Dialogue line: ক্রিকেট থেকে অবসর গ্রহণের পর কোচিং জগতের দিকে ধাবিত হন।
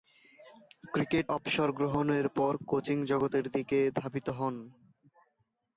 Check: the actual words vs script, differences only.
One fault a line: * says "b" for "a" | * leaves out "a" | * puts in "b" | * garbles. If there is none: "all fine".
* leaves out "থেকে"